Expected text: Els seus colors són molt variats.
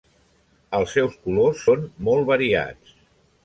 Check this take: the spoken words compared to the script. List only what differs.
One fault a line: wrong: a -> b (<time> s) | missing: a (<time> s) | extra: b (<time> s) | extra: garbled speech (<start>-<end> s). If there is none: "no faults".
no faults